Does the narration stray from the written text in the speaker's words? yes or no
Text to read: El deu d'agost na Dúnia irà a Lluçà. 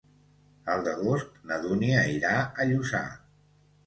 yes